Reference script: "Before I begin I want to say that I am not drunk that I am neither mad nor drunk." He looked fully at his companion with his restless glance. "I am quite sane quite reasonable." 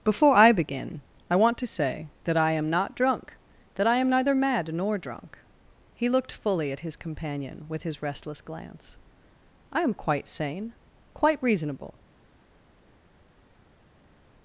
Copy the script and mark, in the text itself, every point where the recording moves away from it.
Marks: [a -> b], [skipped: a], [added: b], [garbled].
"Before I begin I want to say that I am not drunk that I am neither mad nor drunk." He looked fully at his companion with his restless glance. "I am quite sane quite reasonable."